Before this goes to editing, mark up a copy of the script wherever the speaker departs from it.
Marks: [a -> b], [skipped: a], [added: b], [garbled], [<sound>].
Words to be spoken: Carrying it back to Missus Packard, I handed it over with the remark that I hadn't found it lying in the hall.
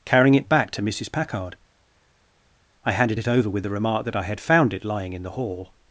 Carrying it back to Missus Packard, I handed it over with the remark that I [hadn't -> had] found it lying in the hall.